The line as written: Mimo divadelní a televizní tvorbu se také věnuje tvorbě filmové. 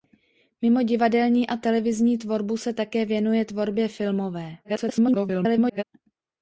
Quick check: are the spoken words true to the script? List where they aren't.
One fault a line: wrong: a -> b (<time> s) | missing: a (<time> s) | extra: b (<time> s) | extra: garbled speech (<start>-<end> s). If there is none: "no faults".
extra: garbled speech (4.6-5.8 s)